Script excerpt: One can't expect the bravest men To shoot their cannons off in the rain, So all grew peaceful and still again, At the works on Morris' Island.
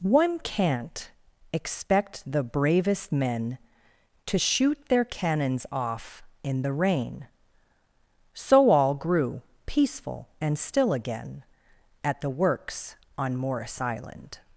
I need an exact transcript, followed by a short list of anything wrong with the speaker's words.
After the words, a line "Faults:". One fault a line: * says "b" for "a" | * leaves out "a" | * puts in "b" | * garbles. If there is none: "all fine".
One can't expect the bravest men To shoot their cannons off in the rain, So all grew peaceful and still again, At the works on Morris' Island.
Faults:
all fine